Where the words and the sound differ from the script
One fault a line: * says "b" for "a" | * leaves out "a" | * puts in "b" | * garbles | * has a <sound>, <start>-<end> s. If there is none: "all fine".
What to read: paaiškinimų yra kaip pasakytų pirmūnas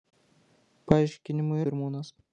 * leaves out "yra kaip pasakytų"